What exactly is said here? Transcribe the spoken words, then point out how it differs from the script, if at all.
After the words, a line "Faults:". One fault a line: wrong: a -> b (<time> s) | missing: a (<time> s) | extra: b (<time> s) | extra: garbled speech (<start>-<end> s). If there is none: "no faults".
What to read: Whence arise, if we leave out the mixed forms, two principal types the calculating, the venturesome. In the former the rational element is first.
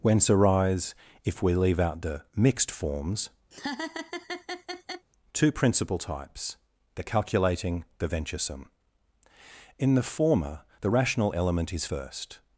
Whence arise, if we leave out the mixed forms, two principal types the calculating, the venturesome. In the former the rational element is first.
Faults:
no faults